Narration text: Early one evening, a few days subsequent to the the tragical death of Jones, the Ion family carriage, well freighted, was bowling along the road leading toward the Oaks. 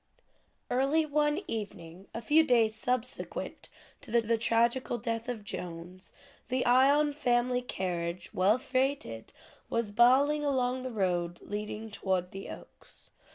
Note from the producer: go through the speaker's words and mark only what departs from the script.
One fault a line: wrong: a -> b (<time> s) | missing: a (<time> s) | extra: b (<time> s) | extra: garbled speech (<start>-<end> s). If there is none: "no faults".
no faults